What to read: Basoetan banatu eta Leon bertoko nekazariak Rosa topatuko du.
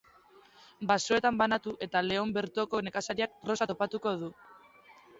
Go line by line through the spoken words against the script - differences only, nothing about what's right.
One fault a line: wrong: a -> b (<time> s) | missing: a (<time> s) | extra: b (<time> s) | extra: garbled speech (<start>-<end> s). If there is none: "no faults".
no faults